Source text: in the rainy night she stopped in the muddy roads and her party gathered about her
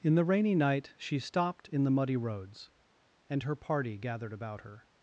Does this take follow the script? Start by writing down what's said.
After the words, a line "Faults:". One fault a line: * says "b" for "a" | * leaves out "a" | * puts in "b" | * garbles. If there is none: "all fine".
in the rainy night she stopped in the muddy roads and her party gathered about her
Faults:
all fine